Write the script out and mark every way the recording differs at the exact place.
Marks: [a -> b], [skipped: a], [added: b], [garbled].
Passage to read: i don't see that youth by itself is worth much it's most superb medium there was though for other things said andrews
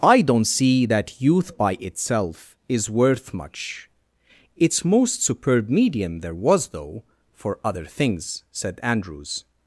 i don't see that youth by itself is worth much it's most superb medium there was though for other things said andrews